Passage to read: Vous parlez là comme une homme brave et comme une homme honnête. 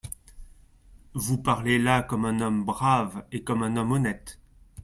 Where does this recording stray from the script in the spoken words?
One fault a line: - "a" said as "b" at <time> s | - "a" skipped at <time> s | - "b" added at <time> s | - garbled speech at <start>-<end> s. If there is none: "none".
- "une" said as "un" at 2.2 s
- "une" said as "un" at 3.6 s